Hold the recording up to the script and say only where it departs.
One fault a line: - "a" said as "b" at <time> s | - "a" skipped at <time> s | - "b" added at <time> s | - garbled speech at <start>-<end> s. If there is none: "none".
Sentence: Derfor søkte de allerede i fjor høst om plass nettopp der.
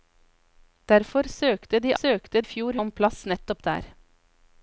- "allerede" said as "søkte" at 1.9 s
- "høst" skipped at 2.8 s